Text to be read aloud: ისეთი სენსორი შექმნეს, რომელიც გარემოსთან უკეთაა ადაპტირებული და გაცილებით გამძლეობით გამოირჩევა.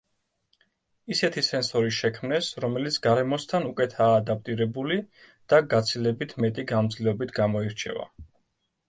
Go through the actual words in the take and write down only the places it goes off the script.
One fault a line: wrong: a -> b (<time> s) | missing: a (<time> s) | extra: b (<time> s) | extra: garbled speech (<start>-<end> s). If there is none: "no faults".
extra: მეტი (6.5 s)